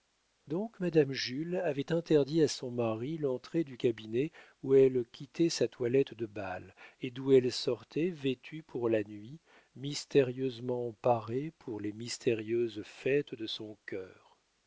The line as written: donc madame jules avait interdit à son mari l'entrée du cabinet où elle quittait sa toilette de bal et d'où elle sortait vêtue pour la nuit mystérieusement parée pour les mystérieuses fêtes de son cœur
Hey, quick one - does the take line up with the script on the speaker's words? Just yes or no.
yes